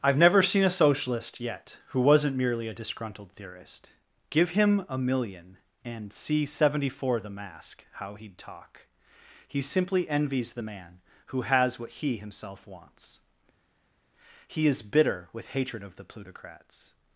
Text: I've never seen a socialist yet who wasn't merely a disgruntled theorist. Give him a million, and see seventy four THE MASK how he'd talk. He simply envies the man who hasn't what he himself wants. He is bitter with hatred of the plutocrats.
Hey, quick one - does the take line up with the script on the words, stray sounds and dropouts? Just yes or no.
no